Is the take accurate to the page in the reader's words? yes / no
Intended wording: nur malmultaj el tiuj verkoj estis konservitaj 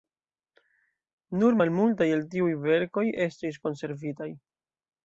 yes